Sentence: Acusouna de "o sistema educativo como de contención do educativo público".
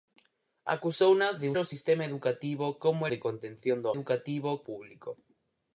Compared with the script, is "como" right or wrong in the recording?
right